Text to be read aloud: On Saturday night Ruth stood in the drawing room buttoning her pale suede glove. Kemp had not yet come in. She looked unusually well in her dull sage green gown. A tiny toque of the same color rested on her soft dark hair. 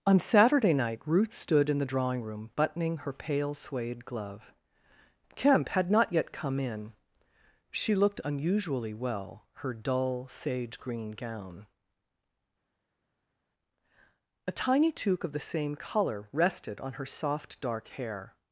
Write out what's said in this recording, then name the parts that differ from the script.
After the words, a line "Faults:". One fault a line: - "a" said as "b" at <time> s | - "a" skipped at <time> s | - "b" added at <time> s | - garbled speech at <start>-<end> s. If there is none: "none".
On Saturday night Ruth stood in the drawing room buttoning her pale suede glove. Kemp had not yet come in. She looked unusually well her dull sage green gown. A tiny toque of the same color rested on her soft dark hair.
Faults:
- "in" skipped at 9.4 s